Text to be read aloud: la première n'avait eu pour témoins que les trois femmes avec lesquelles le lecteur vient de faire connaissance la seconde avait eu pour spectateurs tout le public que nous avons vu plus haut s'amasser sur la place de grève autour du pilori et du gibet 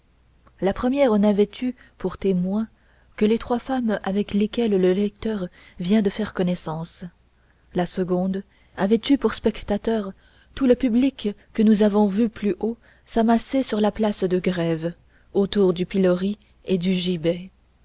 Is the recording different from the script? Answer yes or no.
no